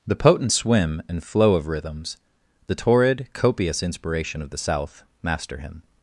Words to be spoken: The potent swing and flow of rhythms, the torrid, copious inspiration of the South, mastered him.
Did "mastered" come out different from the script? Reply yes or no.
yes